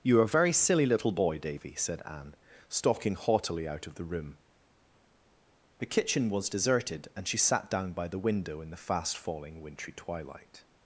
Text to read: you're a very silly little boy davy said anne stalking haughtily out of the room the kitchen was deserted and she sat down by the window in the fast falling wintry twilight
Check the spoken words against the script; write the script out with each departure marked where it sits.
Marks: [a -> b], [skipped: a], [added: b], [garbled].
you're a very silly little boy davy said anne stalking haughtily out of the room the kitchen was deserted and she sat down by the window in the fast falling wintry twilight